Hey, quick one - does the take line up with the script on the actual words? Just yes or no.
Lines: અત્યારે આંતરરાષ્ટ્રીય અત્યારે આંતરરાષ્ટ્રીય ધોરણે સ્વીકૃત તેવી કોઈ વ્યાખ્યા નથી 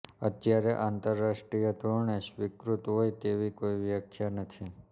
no